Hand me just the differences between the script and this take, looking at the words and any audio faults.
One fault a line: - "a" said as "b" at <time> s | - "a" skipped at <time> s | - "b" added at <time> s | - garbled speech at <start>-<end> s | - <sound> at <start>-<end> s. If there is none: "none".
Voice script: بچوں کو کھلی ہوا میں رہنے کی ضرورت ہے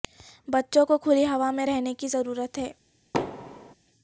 - thud at 3.1-3.7 s